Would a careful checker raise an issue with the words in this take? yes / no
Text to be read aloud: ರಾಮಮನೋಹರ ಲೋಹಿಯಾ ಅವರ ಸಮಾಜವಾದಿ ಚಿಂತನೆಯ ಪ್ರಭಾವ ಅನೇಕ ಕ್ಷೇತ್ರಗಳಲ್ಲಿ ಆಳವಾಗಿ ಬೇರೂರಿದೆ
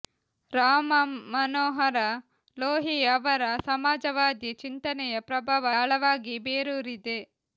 yes